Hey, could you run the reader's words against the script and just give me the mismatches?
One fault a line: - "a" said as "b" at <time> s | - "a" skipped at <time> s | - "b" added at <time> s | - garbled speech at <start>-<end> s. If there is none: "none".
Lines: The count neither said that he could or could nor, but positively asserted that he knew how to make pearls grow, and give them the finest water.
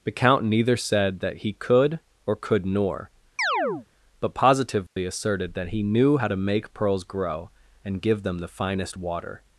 none